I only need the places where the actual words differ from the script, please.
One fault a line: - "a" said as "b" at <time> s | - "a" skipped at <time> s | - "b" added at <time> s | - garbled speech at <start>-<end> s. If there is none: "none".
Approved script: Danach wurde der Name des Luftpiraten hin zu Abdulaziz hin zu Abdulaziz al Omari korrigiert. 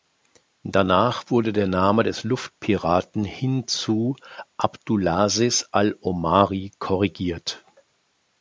- "hin zu Abdulaziz" skipped at 5.7 s